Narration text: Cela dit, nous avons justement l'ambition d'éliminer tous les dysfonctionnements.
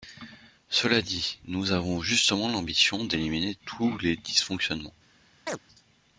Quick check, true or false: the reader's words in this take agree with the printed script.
true